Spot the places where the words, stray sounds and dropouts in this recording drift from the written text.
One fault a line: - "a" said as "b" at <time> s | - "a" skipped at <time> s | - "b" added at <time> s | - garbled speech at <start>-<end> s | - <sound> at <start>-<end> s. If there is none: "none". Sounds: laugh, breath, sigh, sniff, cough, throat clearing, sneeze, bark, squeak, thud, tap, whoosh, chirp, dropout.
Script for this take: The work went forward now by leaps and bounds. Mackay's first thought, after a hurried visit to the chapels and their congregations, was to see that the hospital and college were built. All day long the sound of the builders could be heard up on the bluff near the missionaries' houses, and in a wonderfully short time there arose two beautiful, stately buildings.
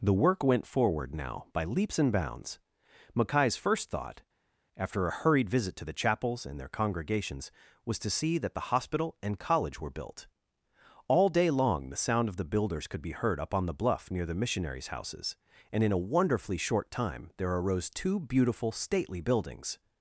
none